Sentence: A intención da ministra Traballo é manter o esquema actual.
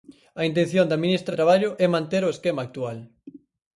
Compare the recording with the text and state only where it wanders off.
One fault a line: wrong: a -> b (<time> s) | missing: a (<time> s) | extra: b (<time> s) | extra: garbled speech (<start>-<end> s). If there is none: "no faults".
no faults